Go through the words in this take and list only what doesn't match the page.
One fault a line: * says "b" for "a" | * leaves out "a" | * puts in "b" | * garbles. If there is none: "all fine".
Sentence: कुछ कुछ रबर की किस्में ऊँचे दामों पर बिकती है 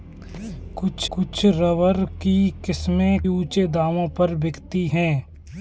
all fine